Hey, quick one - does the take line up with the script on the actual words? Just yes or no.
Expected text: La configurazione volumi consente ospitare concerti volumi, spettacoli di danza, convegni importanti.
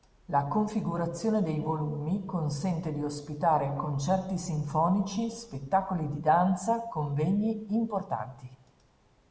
no